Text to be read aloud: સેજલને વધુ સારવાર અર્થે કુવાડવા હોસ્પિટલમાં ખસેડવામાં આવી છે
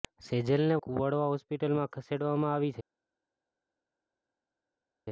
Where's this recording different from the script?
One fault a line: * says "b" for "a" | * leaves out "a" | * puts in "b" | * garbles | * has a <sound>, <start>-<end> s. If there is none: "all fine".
* leaves out "વધુ સારવાર અર્થે"